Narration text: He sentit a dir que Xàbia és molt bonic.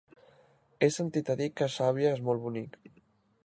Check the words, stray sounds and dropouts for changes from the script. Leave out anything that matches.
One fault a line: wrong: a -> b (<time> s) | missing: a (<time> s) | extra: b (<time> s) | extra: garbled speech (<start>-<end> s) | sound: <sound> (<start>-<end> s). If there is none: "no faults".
no faults